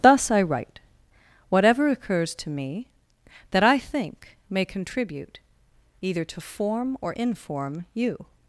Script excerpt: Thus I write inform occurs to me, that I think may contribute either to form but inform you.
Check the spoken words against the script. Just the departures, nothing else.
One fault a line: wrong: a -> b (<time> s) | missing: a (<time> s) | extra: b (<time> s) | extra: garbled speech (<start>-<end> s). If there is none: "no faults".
wrong: inform -> whatever (1.5 s)
wrong: but -> or (7.0 s)